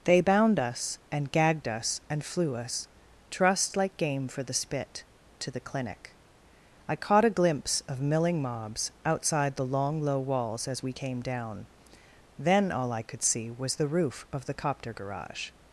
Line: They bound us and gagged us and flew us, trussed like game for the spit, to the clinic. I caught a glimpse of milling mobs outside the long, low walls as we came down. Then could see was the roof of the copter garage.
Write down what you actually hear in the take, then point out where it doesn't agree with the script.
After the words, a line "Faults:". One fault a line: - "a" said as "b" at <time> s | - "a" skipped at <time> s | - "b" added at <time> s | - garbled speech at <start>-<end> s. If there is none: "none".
They bound us and gagged us and flew us, trussed like game for the spit, to the clinic. I caught a glimpse of milling mobs outside the long, low walls as we came down. Then all I could see was the roof of the copter garage.
Faults:
- "all I" added at 12.7 s